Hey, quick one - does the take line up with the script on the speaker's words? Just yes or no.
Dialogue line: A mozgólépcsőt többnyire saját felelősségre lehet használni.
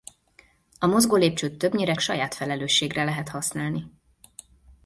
yes